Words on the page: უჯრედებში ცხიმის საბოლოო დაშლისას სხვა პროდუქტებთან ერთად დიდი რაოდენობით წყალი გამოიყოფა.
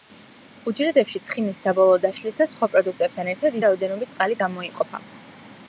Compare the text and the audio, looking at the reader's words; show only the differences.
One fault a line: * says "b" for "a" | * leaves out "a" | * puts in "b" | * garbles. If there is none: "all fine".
* leaves out "დიდი"